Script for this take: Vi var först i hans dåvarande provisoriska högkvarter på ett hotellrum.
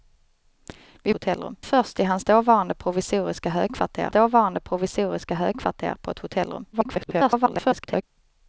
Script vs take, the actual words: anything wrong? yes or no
yes